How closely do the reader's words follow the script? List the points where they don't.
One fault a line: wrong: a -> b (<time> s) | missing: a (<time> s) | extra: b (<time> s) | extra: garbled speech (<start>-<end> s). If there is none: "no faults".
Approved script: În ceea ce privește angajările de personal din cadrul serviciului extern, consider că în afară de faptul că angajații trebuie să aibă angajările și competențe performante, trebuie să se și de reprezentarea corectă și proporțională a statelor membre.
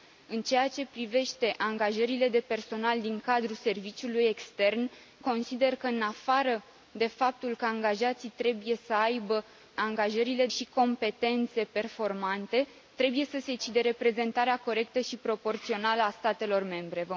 no faults